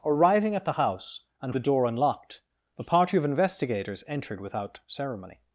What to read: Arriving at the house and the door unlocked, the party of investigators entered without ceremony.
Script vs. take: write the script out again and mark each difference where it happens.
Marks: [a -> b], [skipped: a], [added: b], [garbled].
Arriving at the house and the door unlocked, the party of investigators entered without ceremony.